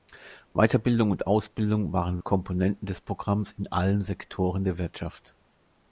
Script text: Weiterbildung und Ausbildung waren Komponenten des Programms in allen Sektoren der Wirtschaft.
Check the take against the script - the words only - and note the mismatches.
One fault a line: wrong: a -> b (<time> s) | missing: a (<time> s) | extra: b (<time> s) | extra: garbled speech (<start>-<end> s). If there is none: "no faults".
no faults